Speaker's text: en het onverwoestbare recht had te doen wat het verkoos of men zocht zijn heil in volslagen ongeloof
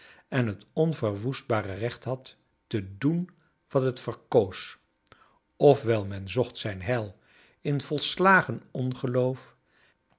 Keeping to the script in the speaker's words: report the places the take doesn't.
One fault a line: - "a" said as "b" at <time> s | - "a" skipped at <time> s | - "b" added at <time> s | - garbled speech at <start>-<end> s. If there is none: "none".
- "wel" added at 5.8 s